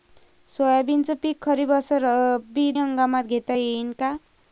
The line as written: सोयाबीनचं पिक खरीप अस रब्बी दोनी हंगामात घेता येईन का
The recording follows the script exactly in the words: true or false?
false